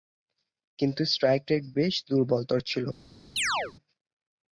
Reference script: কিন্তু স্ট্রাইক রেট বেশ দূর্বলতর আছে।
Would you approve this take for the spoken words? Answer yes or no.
no